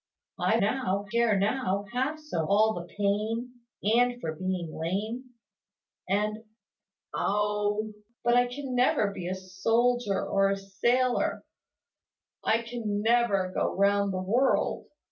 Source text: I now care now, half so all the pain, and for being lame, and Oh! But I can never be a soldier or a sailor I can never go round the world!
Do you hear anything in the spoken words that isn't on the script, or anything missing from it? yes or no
no